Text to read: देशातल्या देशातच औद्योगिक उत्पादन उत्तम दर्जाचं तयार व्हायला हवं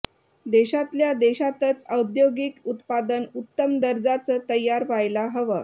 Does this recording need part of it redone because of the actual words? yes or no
no